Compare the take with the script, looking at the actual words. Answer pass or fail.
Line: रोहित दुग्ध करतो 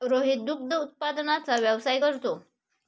fail